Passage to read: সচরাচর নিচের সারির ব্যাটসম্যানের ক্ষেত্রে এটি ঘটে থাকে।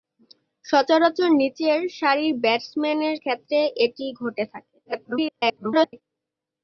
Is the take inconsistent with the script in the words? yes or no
yes